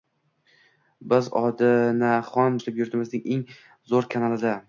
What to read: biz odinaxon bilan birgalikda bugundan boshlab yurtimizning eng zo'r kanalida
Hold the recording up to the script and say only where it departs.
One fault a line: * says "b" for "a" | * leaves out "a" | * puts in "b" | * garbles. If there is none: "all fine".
* leaves out "bilan birgalikda bugundan"